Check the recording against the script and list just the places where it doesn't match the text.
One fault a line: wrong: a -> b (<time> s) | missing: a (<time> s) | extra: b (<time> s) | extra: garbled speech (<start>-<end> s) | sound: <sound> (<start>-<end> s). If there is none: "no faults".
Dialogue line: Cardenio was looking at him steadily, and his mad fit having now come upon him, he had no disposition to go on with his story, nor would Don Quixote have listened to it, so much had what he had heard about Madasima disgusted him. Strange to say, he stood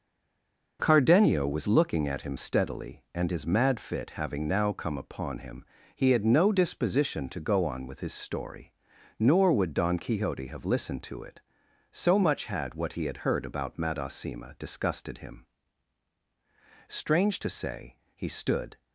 no faults